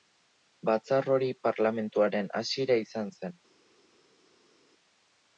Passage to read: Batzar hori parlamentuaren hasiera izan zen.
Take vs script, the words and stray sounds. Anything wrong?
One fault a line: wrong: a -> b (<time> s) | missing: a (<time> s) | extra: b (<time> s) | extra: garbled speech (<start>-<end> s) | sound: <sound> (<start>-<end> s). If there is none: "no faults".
no faults